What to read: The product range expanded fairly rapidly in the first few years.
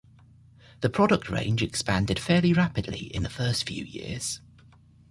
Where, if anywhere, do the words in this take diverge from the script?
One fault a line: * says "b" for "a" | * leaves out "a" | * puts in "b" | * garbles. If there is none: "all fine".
all fine